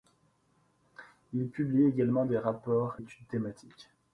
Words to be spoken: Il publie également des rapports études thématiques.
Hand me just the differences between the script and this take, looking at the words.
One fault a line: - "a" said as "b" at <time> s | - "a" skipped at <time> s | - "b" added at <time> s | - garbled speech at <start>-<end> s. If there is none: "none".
none